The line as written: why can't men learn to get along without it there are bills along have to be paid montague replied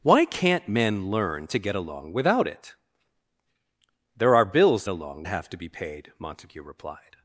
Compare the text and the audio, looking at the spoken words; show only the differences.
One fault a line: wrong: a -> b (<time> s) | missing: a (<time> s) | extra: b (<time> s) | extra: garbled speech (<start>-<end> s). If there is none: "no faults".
no faults